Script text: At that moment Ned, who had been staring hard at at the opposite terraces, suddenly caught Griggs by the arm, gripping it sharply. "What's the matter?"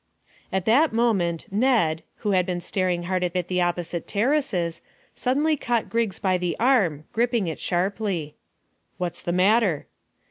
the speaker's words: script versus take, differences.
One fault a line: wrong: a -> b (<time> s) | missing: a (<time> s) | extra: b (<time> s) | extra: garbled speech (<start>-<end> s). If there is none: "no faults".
no faults